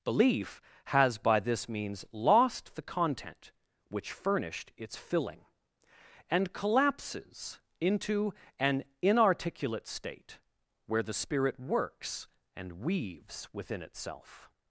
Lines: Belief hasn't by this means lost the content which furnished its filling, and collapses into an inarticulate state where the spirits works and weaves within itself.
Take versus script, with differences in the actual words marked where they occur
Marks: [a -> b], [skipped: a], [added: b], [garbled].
Belief [hasn't -> has] by this means lost the content which furnished its filling, and collapses into an inarticulate state where the [spirits -> spirit] works and weaves within itself.